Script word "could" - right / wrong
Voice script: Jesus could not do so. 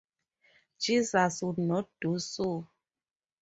wrong